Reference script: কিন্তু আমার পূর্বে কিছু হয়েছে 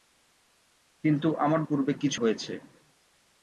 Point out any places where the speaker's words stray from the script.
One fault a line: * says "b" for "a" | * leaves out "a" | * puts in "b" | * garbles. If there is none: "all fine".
all fine